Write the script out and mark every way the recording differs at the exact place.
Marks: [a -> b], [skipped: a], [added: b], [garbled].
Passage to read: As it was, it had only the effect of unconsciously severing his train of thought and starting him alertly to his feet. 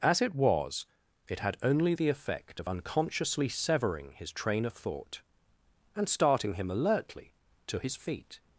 As it was, it had only the effect of unconsciously severing his train of thought and starting him alertly to his feet.